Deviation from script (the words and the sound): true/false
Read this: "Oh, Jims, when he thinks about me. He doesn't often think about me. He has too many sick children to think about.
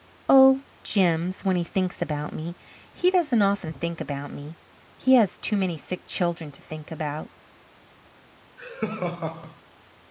true